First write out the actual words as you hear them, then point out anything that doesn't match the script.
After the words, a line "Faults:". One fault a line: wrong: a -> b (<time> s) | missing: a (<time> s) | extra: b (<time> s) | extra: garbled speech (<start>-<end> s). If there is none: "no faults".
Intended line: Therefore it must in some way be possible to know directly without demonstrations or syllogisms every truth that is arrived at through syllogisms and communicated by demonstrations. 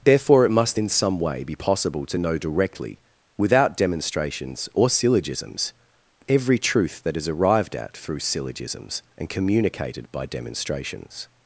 Therefore it must in some way be possible to know directly without demonstrations or syllogisms every truth that is arrived at through syllogisms and communicated by demonstrations.
Faults:
no faults